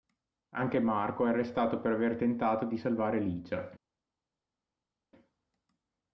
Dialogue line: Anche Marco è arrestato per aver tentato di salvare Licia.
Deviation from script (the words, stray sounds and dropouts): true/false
false